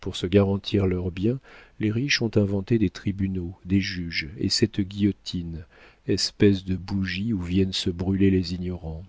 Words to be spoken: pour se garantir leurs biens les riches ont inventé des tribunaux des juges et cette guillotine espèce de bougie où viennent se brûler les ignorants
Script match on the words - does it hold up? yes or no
yes